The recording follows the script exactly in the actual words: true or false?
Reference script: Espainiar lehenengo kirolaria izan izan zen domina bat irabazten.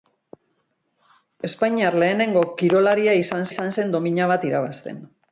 true